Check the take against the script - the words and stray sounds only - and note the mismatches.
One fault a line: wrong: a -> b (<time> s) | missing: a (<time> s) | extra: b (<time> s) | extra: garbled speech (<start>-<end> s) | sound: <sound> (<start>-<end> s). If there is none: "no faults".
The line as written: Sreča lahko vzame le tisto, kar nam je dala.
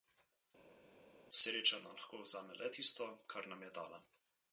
extra: nam (1.8 s)